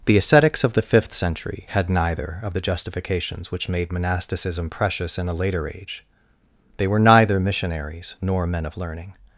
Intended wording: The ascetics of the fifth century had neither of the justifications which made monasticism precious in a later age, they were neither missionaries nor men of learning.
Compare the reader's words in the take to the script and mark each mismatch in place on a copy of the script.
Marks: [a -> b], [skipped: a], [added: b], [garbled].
The ascetics of the fifth century had neither of the justifications which made monasticism precious in a later age, they were neither missionaries nor men of learning.